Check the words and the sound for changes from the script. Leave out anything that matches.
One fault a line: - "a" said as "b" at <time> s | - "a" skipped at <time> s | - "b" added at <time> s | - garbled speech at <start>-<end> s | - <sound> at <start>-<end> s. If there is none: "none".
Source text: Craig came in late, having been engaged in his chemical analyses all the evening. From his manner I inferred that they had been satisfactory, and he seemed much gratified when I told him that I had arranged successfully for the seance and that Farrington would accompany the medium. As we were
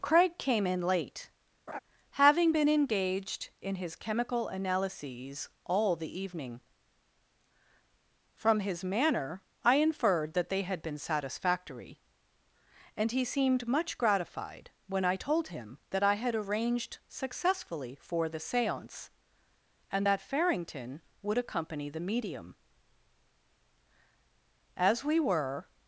- laugh at 1.7-1.8 s